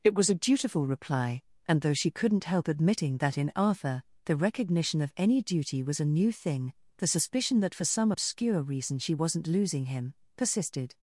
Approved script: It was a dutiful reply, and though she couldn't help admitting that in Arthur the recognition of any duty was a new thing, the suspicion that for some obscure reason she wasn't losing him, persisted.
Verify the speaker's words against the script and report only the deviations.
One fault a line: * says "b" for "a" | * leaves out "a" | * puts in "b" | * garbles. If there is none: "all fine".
all fine